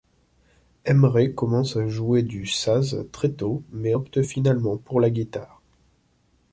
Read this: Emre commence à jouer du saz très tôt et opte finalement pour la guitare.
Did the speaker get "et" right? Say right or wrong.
wrong